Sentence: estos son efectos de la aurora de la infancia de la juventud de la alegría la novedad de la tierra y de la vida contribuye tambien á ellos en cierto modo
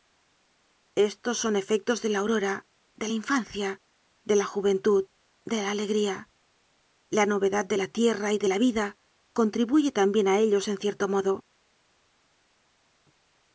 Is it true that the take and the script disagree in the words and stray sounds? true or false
false